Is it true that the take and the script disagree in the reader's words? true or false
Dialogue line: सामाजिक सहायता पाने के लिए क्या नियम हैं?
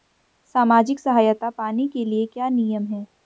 false